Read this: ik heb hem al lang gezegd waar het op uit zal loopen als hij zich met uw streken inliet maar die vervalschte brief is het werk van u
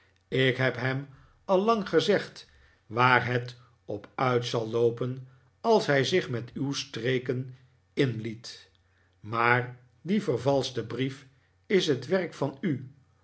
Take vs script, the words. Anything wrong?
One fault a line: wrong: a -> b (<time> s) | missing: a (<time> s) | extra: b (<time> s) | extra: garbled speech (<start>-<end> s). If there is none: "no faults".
no faults